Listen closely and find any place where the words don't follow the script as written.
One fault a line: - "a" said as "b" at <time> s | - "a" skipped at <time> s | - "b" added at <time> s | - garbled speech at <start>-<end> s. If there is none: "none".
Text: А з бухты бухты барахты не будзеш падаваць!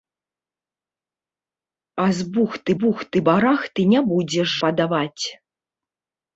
none